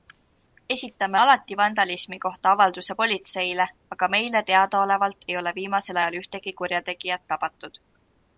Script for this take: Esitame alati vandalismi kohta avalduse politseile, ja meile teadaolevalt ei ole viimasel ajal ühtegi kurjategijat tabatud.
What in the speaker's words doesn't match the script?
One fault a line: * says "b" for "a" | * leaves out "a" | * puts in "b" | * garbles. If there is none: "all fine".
* says "aga" for "ja"